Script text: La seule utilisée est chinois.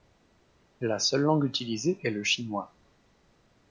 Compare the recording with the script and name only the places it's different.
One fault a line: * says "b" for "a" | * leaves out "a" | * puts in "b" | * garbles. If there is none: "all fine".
* puts in "langue"
* puts in "le"